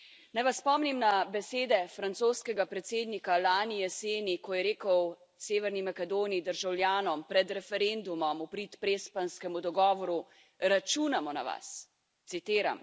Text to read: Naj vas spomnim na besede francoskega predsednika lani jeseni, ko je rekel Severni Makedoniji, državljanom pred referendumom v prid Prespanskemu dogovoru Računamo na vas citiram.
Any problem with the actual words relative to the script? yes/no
no